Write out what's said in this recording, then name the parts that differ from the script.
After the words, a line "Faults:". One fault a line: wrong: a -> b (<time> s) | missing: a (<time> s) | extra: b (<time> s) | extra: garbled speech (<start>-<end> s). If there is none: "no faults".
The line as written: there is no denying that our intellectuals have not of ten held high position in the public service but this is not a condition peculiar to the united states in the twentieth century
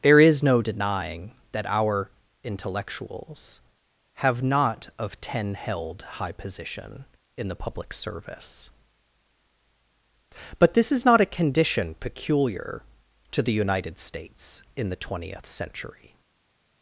there is no denying that our intellectuals have not of ten held high position in the public service but this is not a condition peculiar to the united states in the twentieth century
Faults:
no faults